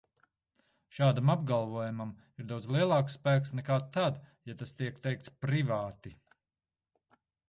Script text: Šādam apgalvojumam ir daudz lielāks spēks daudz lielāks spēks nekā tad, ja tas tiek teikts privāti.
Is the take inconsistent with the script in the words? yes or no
yes